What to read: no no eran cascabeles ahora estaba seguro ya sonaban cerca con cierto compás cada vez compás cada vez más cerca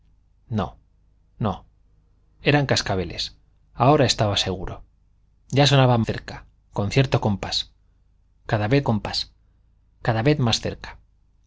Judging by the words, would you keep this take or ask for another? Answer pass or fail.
pass